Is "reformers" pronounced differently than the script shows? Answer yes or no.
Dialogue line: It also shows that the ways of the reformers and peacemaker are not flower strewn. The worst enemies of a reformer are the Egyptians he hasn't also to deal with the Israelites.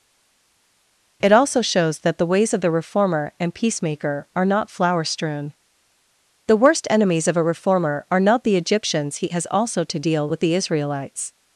yes